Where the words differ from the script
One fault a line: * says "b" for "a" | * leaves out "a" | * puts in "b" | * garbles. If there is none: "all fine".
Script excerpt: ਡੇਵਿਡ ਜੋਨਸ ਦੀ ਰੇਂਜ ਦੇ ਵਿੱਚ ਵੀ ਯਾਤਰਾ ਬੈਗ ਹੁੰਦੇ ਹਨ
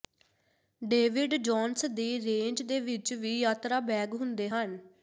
all fine